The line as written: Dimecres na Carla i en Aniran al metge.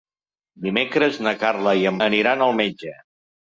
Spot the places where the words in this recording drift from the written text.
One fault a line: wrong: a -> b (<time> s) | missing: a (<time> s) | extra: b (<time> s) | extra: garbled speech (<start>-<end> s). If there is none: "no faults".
no faults